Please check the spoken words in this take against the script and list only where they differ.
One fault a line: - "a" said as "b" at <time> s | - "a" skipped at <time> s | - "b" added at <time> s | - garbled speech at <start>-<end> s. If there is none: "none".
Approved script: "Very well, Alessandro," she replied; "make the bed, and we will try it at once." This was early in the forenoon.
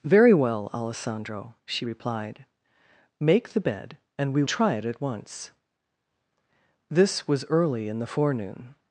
- "will" skipped at 4.4 s